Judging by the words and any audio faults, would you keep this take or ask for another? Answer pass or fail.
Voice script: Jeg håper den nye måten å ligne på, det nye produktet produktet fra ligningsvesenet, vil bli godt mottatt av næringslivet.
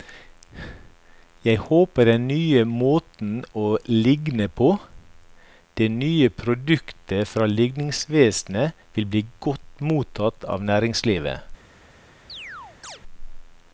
fail